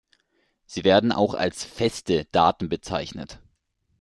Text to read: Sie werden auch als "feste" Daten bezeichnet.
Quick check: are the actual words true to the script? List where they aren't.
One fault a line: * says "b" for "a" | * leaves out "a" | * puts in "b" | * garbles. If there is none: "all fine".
all fine